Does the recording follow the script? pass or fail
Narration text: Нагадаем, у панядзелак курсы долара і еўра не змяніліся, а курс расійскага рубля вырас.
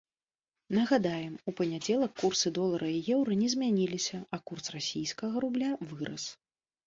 pass